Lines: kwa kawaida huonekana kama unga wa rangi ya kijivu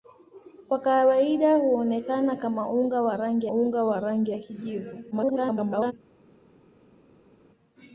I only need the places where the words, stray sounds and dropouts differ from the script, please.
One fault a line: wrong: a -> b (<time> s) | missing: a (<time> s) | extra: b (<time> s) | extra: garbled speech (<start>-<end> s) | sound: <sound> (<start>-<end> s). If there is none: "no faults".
extra: unga wa rangi (3.5 s)
extra: garbled speech (5.1-5.9 s)